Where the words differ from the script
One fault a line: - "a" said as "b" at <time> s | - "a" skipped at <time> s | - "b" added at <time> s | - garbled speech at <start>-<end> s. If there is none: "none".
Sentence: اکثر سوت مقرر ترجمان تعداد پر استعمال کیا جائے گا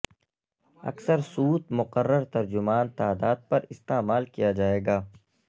none